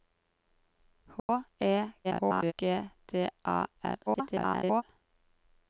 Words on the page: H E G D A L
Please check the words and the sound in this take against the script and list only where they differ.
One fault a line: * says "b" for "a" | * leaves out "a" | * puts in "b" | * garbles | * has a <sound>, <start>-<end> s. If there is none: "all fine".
* has a dropout, 1.2-1.3 s
* garbles
* garbles